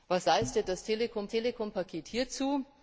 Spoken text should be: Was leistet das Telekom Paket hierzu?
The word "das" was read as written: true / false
true